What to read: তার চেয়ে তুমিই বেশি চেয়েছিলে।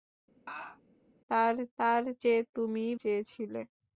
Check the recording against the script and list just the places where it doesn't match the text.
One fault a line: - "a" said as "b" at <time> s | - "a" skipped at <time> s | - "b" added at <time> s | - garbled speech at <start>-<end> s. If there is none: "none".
- "তার" added at 1.8 s
- "বেশি" skipped at 2.9 s